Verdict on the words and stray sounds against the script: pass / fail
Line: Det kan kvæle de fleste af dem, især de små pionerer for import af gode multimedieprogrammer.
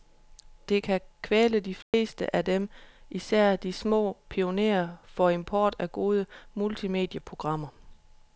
fail